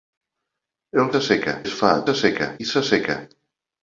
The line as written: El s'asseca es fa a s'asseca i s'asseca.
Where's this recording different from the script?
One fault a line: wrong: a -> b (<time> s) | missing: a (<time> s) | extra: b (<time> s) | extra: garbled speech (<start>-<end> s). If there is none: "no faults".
no faults